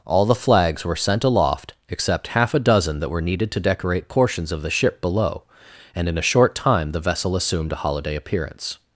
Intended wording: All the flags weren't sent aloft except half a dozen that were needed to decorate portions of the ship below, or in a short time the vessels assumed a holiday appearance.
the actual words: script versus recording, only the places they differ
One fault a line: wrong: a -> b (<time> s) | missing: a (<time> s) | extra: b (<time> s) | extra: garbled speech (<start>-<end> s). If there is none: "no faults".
wrong: weren't -> were (0.8 s)
wrong: or -> and (6.0 s)
wrong: vessels -> vessel (7.0 s)